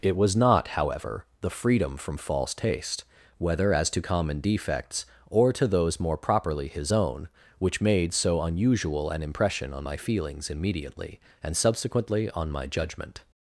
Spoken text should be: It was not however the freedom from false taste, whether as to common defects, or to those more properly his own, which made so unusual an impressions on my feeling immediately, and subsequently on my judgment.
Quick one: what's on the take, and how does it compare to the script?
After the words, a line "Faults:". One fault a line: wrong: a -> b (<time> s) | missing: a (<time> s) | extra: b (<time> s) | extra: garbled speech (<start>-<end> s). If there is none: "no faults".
It was not however the freedom from false taste, whether as to common defects, or to those more properly his own, which made so unusual an impression on my feelings immediately, and subsequently on my judgment.
Faults:
wrong: impressions -> impression (9.2 s)
wrong: feeling -> feelings (10.0 s)